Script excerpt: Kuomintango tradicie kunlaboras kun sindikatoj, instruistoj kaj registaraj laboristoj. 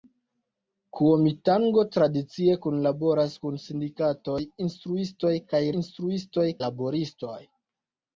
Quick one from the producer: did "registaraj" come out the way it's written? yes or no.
no